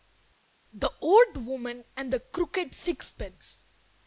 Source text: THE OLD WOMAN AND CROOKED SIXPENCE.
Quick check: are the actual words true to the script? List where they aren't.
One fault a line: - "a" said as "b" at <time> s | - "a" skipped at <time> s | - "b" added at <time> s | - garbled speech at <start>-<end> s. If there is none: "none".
- "THE" added at 2.1 s